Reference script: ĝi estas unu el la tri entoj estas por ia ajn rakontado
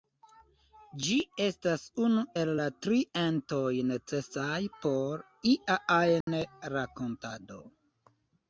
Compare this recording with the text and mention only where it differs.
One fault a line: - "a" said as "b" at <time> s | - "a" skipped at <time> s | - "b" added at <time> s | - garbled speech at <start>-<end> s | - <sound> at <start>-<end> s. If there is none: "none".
- "estas" said as "necesaj" at 3.9 s
- dropout at 6.2-6.3 s